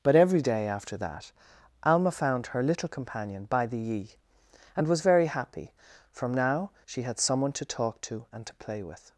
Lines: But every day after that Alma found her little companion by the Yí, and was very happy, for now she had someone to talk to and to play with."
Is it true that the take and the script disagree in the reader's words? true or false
true